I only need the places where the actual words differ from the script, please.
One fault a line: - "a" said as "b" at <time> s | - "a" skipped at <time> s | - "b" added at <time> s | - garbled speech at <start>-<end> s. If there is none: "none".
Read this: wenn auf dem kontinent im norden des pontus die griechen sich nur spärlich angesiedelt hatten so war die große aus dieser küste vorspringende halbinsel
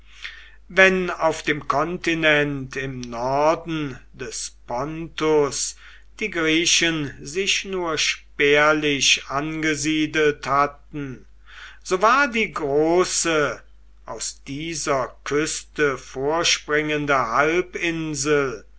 none